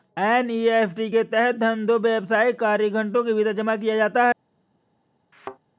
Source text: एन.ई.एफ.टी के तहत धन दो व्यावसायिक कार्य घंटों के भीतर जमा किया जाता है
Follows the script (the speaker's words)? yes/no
yes